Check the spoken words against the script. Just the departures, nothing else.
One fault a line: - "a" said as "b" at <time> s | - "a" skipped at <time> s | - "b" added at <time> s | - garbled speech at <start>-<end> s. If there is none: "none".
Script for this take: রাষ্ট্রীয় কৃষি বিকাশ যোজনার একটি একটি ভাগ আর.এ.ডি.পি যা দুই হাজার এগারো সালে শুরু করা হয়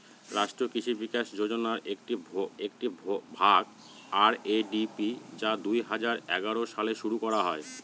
none